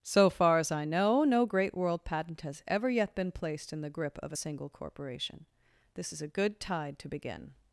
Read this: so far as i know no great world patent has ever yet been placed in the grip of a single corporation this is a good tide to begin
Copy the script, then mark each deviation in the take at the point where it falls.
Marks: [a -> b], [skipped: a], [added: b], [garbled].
so far as i know no great world patent has ever yet been placed in the grip of a single corporation this is a good tide to begin